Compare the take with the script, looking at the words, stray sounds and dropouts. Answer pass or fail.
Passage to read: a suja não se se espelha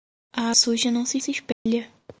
fail